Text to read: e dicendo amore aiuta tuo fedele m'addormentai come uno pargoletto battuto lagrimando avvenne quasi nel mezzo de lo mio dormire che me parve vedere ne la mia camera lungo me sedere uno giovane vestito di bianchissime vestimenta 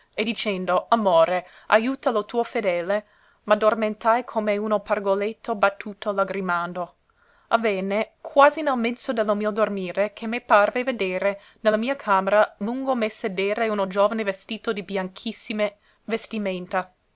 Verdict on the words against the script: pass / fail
fail